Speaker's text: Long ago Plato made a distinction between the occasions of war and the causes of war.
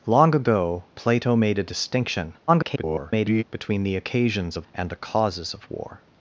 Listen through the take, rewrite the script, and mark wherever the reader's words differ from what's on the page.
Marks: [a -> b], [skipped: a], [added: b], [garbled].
Long ago Plato made a distinction [garbled] between the occasions of [skipped: war] and the causes of war.